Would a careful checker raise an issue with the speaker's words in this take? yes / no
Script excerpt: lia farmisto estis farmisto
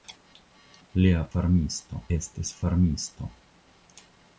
no